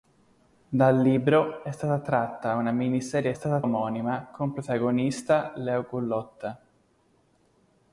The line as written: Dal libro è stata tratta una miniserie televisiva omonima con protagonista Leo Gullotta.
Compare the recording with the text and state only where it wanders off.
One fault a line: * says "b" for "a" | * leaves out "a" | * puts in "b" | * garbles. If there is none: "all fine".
* says "stata" for "televisiva"